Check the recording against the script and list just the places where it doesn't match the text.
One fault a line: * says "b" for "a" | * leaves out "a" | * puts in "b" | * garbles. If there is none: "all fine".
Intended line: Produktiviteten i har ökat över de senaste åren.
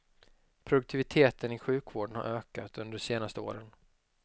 * puts in "sjukvården"
* says "under" for "över"